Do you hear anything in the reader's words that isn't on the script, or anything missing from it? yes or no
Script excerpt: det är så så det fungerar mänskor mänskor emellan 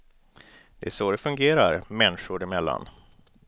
yes